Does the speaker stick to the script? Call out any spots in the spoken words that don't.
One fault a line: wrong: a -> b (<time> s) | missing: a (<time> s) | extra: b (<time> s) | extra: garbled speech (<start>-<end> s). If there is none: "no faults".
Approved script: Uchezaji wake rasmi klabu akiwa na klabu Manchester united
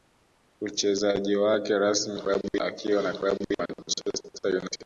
no faults